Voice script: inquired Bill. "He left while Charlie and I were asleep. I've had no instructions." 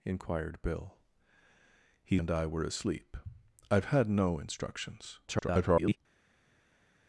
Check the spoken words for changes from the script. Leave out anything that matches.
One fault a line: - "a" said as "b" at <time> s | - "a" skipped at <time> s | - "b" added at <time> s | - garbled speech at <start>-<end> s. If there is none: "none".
- "left while Charlie" skipped at 2.2 s
- garbled speech at 5.3-6.0 s